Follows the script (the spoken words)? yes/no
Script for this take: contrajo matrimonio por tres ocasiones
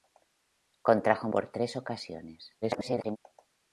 no